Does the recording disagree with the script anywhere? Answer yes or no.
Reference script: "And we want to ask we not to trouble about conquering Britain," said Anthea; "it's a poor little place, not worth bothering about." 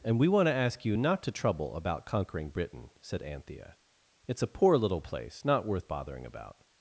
yes